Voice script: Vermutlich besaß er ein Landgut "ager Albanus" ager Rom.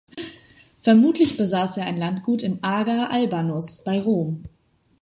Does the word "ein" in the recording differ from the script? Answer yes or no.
no